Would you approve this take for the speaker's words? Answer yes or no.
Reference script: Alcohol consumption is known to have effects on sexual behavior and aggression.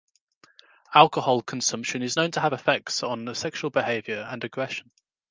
yes